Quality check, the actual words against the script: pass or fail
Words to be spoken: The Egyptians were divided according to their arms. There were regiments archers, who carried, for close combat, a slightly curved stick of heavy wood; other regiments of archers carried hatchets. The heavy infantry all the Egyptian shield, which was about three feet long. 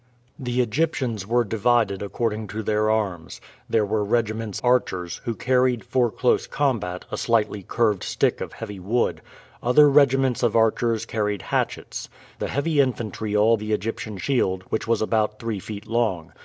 pass